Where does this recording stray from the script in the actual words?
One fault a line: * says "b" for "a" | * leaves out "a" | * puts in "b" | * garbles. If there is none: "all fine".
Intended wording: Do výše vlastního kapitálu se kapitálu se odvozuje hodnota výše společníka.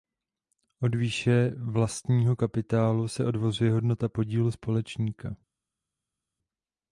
* says "Od" for "Do"
* leaves out "kapitálu se"
* says "podílu" for "výše"